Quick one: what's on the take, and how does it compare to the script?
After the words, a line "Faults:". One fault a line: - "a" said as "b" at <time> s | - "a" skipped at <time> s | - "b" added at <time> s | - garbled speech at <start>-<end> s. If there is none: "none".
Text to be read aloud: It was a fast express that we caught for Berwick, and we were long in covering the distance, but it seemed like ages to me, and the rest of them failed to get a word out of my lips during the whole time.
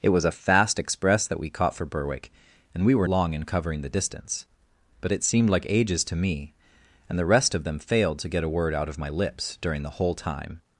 It was a fast express that we caught for Berwick, and we were long in covering the distance, but it seemed like ages to me, and the rest of them failed to get a word out of my lips during the whole time.
Faults:
none